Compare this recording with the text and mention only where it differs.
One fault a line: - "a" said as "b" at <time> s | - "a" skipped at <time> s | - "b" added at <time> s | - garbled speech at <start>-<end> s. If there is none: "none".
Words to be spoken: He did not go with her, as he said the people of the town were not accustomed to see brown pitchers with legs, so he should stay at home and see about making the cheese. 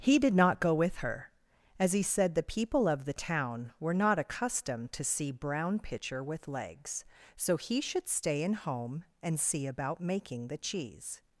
- "pitchers" said as "pitcher" at 5.8 s
- "at" said as "in" at 8.4 s